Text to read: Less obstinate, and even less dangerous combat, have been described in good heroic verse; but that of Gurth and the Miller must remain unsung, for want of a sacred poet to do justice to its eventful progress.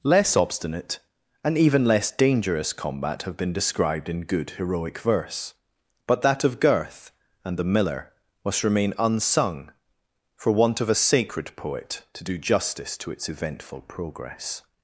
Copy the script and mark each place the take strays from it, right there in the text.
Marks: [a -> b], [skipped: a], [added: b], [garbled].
Less obstinate, and even less dangerous combat, have been described in good heroic verse; but that of Gurth and the Miller must remain unsung, for want of a sacred poet to do justice to its eventful progress.